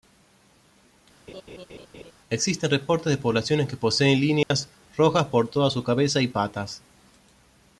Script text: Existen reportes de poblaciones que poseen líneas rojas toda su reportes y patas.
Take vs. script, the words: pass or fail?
fail